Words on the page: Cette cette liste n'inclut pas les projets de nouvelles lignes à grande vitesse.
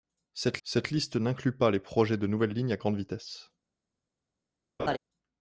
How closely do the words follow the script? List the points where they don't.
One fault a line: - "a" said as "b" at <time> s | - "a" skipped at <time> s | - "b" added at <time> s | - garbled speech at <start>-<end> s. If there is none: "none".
none